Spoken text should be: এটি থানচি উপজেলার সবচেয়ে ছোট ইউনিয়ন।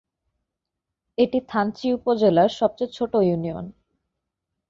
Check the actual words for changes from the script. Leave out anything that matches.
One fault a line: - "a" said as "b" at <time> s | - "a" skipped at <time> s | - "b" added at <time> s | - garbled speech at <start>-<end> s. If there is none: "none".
none